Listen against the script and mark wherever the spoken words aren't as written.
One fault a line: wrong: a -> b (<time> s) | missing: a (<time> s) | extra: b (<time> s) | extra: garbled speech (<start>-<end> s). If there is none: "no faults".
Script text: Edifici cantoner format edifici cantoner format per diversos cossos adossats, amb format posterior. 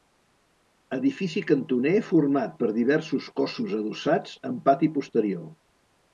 missing: edifici cantoner format (2.6 s)
wrong: format -> pati (4.7 s)